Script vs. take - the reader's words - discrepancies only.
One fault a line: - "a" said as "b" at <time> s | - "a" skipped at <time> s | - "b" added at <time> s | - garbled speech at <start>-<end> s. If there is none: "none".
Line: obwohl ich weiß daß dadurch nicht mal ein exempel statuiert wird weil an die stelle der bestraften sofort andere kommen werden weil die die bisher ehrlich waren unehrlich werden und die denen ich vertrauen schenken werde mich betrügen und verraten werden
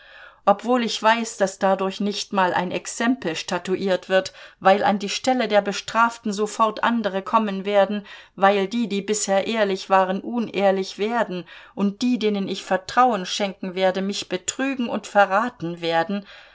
none